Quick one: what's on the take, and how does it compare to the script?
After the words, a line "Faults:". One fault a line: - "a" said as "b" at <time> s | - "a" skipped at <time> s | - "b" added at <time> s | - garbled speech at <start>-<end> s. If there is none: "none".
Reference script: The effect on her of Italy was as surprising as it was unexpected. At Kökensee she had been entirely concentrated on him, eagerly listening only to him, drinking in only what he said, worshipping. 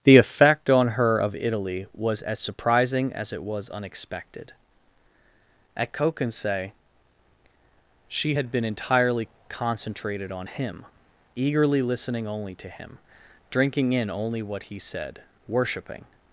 The effect on her of Italy was as surprising as it was unexpected. At Kökensee she had been entirely concentrated on him, eagerly listening only to him, drinking in only what he said, worshipping.
Faults:
none